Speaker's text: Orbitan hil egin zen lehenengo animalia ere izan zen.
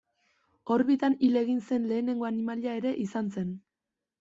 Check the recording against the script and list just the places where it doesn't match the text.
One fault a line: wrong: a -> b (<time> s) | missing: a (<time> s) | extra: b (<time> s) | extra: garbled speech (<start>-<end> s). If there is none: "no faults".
no faults